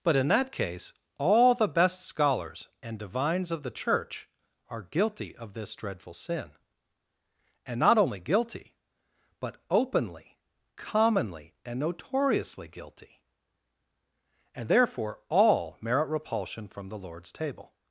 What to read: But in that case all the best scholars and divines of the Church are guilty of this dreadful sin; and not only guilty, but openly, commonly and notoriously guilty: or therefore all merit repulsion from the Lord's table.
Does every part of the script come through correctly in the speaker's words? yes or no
no